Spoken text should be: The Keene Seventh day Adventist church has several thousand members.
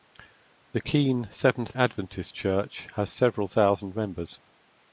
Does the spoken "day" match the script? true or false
false